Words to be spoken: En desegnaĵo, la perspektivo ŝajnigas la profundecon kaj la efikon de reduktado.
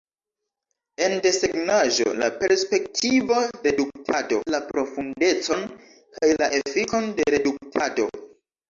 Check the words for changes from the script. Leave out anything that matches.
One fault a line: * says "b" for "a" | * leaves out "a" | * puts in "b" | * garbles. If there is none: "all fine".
* says "reduktado" for "ŝajnigas"